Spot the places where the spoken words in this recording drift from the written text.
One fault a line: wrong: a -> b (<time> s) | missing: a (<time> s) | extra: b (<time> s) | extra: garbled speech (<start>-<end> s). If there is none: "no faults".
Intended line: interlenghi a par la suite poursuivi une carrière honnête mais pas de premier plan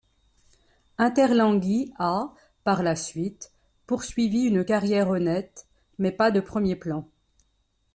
no faults